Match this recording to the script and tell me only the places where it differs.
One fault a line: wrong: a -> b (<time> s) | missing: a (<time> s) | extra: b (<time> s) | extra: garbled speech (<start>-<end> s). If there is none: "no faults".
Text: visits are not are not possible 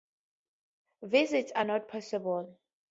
missing: are not (1.9 s)